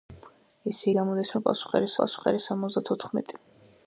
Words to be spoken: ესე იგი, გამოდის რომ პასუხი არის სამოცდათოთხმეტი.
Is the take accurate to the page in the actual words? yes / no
no